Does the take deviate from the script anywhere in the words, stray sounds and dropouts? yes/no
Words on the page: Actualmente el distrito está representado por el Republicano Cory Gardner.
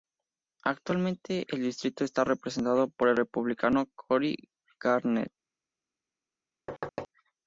yes